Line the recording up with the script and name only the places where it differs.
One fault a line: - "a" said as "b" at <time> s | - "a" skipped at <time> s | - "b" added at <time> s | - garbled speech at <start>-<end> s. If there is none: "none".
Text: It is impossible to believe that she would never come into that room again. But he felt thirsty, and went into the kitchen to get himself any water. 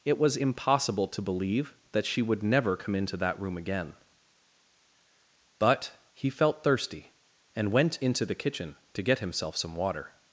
- "is" said as "was" at 0.2 s
- "any" said as "some" at 9.6 s